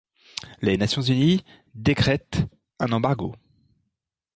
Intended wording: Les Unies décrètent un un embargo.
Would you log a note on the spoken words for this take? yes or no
yes